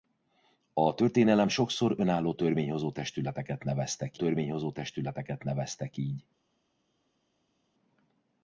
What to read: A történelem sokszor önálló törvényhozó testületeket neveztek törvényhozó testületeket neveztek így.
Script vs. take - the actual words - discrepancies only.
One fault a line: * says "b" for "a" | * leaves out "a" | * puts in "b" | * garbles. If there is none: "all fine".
all fine